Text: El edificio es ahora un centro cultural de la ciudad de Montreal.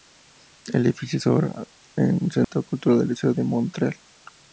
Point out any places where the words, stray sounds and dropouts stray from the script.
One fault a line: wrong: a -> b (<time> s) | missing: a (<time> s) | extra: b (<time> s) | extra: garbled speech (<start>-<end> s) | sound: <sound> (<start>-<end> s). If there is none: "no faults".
sound: dropout (2.4-2.5 s)